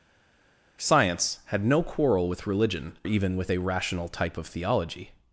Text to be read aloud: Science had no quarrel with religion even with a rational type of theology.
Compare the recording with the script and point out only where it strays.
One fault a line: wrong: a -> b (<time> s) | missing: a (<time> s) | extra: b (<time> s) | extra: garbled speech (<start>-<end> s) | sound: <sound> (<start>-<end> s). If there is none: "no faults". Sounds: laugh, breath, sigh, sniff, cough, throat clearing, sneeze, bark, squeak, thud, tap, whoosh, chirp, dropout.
no faults